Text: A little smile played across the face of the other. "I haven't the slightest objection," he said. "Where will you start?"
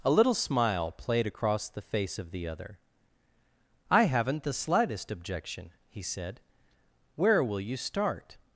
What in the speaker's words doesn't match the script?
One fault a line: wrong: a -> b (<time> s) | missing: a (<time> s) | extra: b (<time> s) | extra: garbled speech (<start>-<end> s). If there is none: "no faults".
no faults